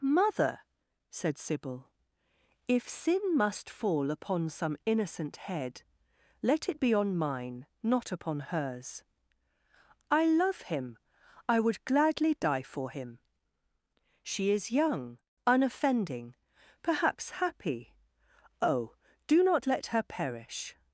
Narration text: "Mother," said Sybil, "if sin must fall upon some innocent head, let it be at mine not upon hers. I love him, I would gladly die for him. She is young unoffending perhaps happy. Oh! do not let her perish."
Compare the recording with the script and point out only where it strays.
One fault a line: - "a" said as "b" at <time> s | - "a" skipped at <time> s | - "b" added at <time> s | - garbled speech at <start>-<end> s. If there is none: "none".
- "at" said as "on" at 6.9 s